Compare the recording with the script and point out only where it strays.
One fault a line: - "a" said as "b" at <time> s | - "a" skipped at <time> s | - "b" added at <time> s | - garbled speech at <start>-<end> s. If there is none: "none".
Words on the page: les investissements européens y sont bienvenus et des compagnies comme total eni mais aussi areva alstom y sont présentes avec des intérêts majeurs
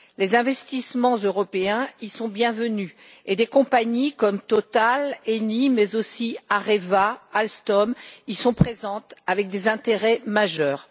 none